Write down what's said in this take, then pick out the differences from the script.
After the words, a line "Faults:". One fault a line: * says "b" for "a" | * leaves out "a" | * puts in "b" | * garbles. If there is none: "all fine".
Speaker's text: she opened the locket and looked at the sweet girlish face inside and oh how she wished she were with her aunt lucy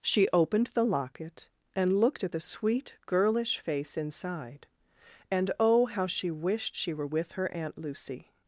she opened the locket and looked at the sweet girlish face inside and oh how she wished she were with her aunt lucy
Faults:
all fine